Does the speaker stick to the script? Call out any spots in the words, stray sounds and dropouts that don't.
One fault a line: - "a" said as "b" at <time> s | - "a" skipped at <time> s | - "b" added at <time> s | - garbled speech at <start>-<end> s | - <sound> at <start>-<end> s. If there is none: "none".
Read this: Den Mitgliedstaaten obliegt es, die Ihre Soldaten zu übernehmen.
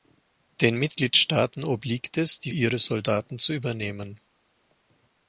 none